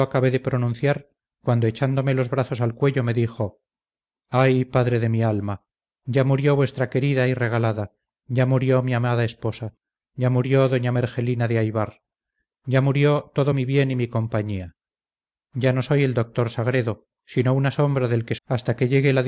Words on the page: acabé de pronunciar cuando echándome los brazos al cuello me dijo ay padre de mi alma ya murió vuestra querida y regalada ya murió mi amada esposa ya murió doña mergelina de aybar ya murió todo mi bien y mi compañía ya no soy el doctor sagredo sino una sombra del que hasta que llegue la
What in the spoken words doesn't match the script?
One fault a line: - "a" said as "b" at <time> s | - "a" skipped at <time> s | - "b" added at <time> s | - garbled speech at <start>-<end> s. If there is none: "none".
none